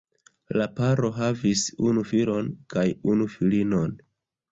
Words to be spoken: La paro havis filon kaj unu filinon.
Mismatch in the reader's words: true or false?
true